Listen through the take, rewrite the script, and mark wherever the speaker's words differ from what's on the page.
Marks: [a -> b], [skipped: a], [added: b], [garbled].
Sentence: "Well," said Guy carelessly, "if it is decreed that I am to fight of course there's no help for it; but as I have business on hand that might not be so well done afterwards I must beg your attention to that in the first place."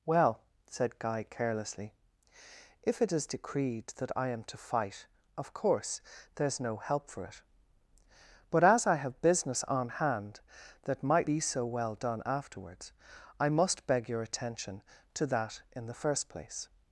"Well," said Guy carelessly, "if it is decreed that I am to fight of course there's no help for it; but as I have business on hand that might [skipped: not] be so well done afterwards I must beg your attention to that in the first place."